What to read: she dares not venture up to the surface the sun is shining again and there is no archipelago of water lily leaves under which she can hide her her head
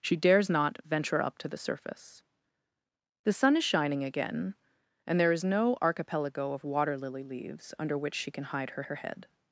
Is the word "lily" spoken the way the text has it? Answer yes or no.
yes